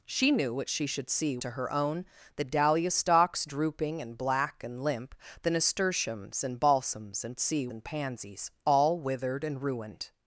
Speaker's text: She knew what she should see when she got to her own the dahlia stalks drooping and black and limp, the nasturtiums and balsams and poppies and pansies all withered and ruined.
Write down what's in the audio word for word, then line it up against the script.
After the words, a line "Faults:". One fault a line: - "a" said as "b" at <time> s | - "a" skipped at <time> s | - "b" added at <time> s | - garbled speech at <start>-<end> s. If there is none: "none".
She knew what she should see to her own the dahlia stalks drooping and black and limp, the nasturtiums and balsams and see and pansies all withered and ruined.
Faults:
- "when she got" skipped at 1.4 s
- "poppies" said as "see" at 7.4 s